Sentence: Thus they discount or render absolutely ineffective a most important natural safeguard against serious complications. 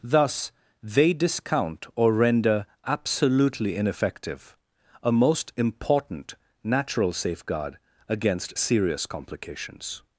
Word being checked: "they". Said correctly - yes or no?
yes